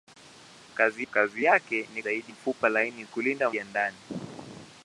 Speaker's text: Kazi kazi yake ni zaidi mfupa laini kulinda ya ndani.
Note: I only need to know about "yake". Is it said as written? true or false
true